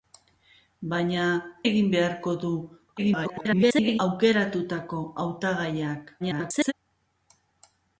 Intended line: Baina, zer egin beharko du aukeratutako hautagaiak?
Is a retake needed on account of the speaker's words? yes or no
yes